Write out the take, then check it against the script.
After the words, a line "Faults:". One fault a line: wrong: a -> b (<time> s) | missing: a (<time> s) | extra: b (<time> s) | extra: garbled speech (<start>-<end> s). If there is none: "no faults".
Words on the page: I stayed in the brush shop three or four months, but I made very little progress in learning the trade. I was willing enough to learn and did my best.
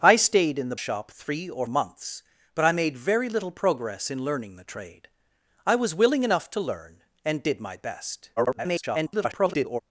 I stayed in the shop three or months, but I made very little progress in learning the trade. I was willing enough to learn and did my best. [garbled]
Faults:
missing: brush (0.8 s)
missing: four (1.7 s)
extra: garbled speech (8.4-9.8 s)